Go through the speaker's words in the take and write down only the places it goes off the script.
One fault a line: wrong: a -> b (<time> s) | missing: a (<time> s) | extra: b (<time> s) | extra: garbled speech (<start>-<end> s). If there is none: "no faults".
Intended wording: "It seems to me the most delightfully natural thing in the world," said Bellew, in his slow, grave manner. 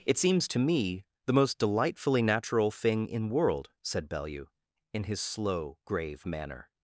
missing: the (3.3 s)